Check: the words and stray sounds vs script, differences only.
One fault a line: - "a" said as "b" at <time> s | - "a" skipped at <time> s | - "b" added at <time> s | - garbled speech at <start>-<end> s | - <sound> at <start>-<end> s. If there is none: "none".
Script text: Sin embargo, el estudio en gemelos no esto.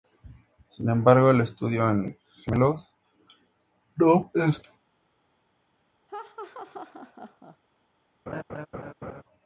- laugh at 6.1-7.6 s
- laugh at 8.3-9.2 s